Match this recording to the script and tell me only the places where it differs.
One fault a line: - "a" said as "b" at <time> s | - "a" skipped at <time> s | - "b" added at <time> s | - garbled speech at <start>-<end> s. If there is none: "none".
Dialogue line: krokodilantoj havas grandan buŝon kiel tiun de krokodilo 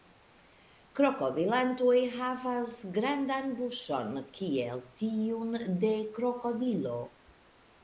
none